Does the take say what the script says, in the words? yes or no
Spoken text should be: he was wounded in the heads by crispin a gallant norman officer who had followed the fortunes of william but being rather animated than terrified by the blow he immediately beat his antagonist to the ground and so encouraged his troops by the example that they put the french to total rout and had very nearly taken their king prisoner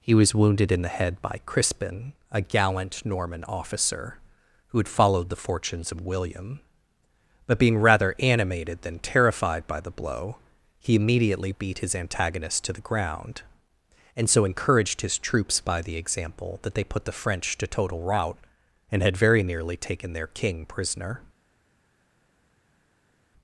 no